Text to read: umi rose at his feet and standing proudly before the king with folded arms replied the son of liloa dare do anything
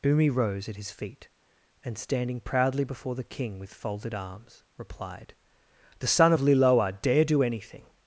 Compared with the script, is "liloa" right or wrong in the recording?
right